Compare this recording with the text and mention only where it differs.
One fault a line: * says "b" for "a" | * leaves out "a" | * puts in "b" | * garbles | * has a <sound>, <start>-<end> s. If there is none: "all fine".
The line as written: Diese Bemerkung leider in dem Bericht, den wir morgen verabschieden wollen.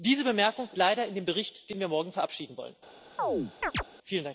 * has a chirp, 3.2-3.8 s